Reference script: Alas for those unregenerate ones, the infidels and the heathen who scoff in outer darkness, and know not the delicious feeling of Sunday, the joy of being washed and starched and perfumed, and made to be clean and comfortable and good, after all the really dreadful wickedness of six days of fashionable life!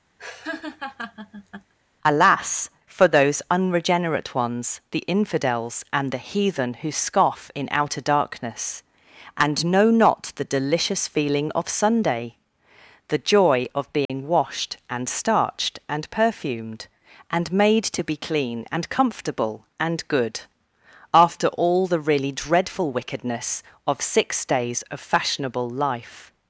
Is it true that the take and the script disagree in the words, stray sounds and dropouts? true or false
true